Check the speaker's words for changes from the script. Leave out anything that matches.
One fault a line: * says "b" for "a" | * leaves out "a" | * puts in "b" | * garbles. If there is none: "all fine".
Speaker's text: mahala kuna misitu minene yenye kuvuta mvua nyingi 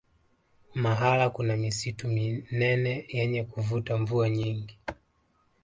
all fine